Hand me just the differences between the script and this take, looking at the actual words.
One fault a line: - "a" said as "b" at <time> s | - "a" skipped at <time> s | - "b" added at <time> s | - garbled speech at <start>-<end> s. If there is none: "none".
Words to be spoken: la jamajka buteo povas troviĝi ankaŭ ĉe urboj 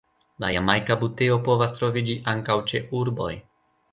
none